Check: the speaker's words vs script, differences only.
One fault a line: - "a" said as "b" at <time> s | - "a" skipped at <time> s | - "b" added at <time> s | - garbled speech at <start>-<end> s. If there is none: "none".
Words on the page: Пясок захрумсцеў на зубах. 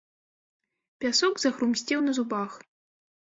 none